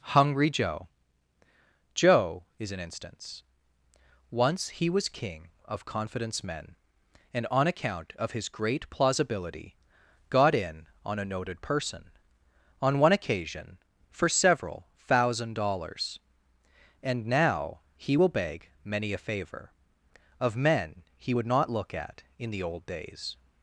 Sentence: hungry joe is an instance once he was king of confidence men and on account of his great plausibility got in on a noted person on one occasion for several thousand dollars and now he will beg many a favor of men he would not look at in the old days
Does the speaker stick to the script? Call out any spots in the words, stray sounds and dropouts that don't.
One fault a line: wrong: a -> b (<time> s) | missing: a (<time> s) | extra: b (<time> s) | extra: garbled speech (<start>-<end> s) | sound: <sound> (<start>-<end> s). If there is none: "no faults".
extra: joe (1.9 s)